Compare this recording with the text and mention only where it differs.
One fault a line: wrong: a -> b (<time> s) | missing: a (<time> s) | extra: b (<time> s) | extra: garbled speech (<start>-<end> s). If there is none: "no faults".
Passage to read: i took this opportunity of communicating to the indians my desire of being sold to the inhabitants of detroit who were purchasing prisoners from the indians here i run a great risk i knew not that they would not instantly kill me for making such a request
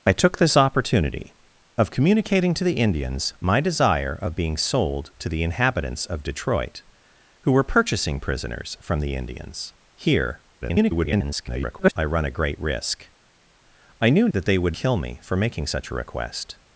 extra: garbled speech (10.6-11.9 s)
missing: not (14.3 s)
missing: not instantly (14.7 s)